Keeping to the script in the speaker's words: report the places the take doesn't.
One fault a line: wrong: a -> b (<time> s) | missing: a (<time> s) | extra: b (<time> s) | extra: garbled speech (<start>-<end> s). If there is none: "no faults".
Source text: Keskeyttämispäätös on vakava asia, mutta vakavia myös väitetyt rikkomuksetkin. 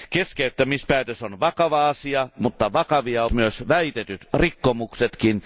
no faults